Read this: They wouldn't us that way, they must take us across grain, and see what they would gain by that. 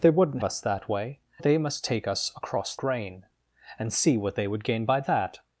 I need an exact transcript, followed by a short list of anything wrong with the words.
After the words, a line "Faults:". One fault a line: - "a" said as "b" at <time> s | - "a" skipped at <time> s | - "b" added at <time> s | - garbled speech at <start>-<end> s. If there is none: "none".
They wouldn't us that way, they must take us across grain, and see what they would gain by that.
Faults:
none